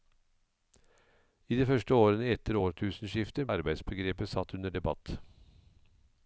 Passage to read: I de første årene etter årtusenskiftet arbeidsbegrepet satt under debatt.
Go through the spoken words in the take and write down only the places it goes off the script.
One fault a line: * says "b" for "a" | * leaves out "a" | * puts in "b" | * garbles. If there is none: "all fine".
all fine